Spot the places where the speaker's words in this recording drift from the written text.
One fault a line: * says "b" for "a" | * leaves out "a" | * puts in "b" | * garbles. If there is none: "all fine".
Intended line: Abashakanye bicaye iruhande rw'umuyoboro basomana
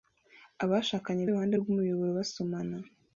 * leaves out "bicaye"